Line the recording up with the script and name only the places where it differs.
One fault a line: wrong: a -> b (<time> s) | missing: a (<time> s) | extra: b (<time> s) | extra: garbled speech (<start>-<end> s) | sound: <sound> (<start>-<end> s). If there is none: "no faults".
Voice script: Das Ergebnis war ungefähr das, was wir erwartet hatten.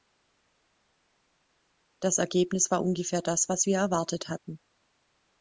no faults